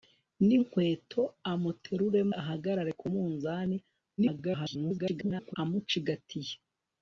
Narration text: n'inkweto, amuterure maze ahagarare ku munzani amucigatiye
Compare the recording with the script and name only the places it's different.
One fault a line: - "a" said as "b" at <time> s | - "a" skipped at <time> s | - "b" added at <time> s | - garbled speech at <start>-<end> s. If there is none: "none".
- "maze" skipped at 2.2 s
- garbled speech at 4.2-5.5 s